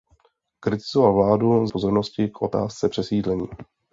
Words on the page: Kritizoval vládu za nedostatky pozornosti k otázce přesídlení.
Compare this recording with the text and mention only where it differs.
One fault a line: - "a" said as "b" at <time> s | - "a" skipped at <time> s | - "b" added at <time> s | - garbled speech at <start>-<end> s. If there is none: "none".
- "za nedostatky" skipped at 1.7 s